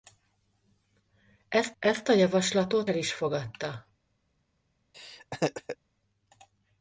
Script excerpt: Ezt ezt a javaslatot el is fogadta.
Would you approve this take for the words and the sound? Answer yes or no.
no